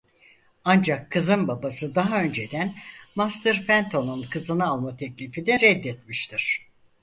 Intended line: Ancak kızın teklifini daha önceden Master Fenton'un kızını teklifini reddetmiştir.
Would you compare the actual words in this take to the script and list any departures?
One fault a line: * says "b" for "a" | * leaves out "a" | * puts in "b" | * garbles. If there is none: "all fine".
* says "babası" for "teklifini"
* puts in "alma"